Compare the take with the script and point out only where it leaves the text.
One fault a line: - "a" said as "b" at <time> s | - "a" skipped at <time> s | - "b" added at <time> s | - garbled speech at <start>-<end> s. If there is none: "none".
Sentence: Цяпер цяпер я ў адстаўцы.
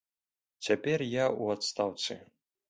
- "цяпер" skipped at 1.0 s